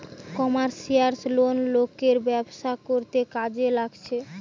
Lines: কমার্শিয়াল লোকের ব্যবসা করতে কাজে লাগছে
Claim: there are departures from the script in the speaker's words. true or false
true